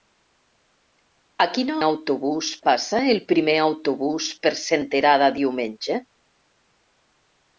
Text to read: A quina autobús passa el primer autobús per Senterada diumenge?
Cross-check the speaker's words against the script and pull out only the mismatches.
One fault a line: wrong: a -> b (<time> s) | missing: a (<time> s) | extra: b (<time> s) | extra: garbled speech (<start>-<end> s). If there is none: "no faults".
no faults